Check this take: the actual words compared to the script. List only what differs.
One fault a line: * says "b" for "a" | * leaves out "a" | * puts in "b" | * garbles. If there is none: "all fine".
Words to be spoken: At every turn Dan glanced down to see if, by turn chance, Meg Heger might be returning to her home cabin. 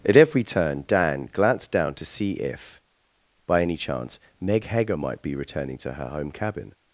* says "any" for "turn"